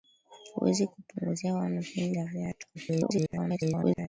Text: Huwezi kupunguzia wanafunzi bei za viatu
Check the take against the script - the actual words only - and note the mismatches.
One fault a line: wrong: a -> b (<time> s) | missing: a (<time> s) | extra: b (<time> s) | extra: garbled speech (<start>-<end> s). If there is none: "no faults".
missing: bei (2.1 s)
extra: garbled speech (2.7-4.1 s)